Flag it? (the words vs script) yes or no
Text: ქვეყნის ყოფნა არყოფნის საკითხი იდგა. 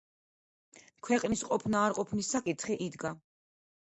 no